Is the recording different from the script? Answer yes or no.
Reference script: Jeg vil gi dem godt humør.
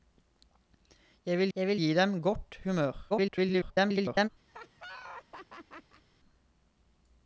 yes